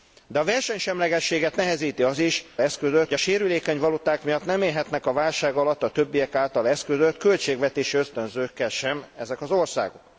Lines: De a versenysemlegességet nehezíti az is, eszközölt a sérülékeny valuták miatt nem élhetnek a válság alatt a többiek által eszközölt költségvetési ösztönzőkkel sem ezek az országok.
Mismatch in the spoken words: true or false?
false